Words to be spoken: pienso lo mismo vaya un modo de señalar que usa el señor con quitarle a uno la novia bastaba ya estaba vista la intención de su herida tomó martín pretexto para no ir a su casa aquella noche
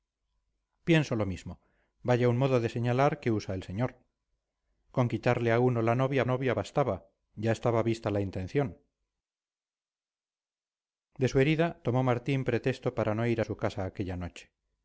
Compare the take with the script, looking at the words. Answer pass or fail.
fail